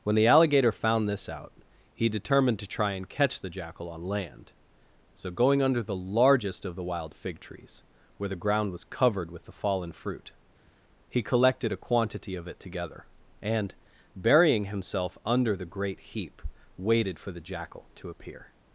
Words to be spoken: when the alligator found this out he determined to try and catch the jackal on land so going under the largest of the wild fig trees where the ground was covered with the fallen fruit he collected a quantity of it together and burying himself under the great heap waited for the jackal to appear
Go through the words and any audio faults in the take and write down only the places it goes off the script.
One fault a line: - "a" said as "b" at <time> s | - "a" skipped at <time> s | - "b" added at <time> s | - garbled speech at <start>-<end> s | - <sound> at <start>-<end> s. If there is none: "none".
none